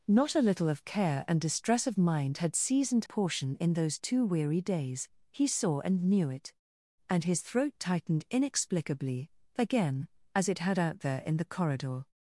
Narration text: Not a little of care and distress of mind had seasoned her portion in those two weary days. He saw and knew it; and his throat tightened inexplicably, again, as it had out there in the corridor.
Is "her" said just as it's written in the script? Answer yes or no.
no